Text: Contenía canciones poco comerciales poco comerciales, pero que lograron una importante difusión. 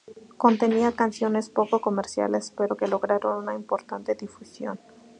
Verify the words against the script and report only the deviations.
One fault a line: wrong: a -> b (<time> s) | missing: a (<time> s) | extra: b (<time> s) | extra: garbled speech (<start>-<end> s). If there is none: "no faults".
missing: poco comerciales (2.5 s)